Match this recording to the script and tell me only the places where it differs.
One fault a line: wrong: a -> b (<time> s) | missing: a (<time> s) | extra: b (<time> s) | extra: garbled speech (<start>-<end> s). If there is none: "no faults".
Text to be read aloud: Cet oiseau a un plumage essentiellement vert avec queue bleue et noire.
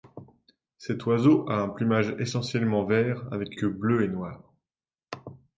no faults